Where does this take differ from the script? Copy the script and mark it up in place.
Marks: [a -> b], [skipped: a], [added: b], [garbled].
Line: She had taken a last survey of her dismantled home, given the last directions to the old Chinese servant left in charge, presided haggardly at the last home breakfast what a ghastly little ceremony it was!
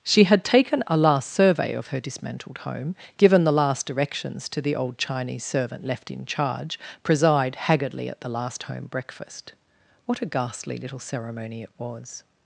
She had taken a last survey of her dismantled home, given the last directions to the old Chinese servant left in charge, [presided -> preside] haggardly at the last home breakfast what a ghastly little ceremony it was!